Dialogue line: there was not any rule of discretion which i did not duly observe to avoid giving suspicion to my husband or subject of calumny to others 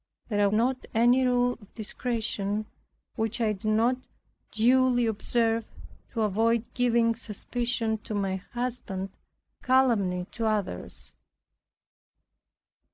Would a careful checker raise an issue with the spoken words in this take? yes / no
yes